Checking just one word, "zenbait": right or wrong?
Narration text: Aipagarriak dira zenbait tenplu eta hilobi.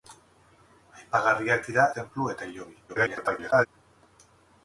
wrong